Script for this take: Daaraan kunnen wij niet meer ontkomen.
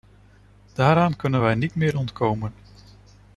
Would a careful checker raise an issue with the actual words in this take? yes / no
no